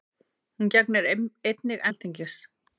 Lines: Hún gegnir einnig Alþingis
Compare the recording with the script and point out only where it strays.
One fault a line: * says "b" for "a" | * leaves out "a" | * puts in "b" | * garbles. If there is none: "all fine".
all fine